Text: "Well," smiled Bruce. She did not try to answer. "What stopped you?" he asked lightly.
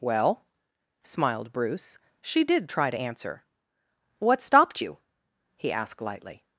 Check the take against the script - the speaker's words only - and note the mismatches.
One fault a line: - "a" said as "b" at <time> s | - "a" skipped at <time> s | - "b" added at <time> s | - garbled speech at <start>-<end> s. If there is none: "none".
- "not" skipped at 2.7 s